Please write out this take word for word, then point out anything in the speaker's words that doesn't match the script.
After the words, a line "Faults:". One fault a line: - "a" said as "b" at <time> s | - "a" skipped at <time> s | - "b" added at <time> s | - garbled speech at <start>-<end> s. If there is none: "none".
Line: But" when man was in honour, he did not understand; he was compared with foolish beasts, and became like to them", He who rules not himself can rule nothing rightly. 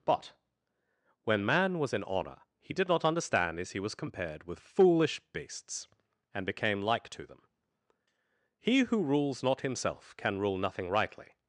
But" when man was in honour, he did not understand; as he was compared with foolish beasts, and became like to them", He who rules not himself can rule nothing rightly.
Faults:
- "as" added at 3.6 s